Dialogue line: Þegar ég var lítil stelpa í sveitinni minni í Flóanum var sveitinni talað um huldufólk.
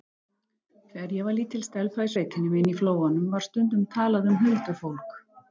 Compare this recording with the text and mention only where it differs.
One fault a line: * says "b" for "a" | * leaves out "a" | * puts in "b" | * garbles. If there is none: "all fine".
* says "stundum" for "sveitinni"